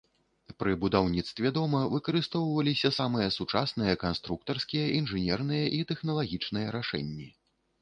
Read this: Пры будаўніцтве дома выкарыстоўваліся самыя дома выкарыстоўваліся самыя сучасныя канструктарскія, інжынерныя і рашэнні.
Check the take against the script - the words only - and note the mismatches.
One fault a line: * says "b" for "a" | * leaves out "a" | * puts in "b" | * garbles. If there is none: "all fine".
* leaves out "дома выкарыстоўваліся самыя"
* puts in "тэхналагічныя"